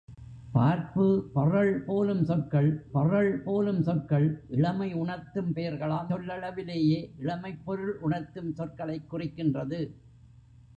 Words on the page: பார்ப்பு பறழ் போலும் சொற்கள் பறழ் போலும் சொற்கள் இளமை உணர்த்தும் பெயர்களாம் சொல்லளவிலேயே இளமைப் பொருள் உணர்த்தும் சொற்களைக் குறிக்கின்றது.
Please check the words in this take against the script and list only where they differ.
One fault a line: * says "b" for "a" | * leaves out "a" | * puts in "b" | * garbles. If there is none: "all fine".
all fine